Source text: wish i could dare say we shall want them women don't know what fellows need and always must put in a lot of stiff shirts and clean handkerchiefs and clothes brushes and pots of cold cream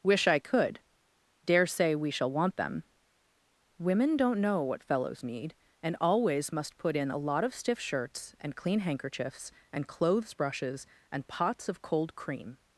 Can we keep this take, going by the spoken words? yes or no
yes